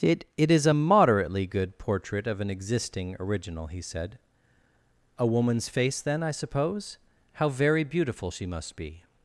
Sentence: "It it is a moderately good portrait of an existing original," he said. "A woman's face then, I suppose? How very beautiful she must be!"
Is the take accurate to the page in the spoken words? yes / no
yes